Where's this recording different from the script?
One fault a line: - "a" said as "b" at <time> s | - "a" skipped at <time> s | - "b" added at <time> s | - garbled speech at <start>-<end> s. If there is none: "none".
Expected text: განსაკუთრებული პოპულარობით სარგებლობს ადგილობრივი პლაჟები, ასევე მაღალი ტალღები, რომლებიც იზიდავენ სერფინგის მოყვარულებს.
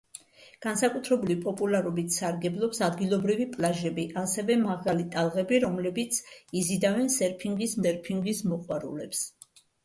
- "სერფინგის" added at 7.8 s